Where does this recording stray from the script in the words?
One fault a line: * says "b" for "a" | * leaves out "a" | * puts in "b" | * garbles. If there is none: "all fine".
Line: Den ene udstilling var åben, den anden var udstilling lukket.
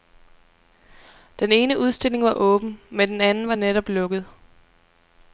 * puts in "men"
* says "netop" for "udstilling"